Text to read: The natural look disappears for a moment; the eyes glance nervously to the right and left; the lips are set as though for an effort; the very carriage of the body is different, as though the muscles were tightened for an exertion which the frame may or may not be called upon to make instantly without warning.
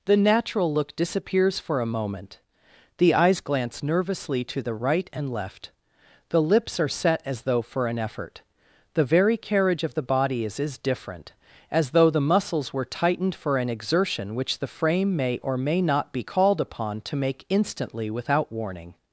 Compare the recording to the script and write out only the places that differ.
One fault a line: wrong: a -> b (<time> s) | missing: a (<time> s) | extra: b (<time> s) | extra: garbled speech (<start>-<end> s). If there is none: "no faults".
extra: is (10.6 s)